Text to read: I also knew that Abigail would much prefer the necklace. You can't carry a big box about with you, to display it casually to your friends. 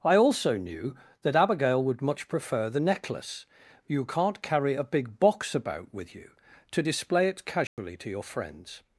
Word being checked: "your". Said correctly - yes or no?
yes